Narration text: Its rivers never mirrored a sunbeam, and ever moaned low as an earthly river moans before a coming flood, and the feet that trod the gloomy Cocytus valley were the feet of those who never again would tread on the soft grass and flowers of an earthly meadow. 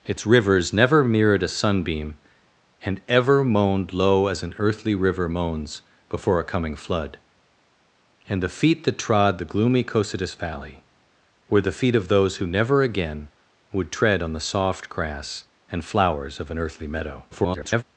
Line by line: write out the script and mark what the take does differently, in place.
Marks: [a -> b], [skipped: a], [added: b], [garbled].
Its rivers never mirrored a sunbeam, and ever moaned low as an earthly river moans before a coming flood, and the feet that trod the gloomy Cocytus valley were the feet of those who never again would tread on the soft grass and flowers of an earthly meadow. [garbled]